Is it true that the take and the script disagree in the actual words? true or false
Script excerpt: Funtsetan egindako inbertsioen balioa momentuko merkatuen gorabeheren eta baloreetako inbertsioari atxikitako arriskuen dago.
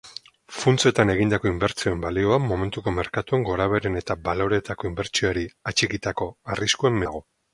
false